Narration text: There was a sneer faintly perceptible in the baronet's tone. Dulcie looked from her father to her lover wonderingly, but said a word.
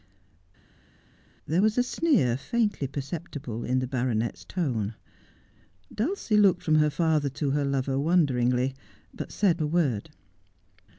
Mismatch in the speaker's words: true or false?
false